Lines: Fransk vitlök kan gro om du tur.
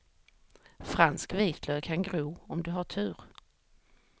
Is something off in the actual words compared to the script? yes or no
yes